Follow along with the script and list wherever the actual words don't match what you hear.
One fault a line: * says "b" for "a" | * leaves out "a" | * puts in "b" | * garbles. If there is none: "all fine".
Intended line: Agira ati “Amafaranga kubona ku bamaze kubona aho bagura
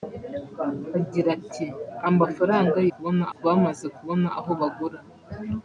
all fine